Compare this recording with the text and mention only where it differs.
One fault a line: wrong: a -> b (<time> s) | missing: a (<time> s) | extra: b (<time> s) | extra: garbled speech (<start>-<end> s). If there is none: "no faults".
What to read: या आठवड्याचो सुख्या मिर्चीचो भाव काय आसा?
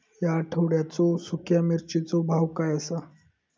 no faults